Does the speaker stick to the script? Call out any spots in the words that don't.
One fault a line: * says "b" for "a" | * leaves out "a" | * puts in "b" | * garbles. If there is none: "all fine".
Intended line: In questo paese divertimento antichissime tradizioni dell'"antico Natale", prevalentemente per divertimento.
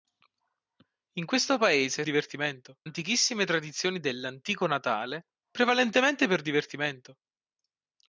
all fine